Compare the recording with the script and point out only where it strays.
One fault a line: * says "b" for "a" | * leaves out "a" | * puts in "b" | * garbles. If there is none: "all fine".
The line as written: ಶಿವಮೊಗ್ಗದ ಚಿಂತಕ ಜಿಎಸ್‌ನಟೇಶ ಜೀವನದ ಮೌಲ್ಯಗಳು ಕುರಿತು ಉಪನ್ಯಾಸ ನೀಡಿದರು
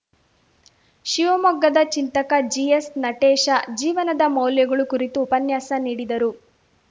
all fine